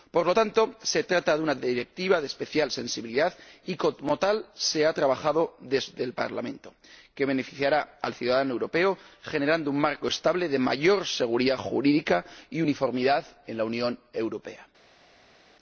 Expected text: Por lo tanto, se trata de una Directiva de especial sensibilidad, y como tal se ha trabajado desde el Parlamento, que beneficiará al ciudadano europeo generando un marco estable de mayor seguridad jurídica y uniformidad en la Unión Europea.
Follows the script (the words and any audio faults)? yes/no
yes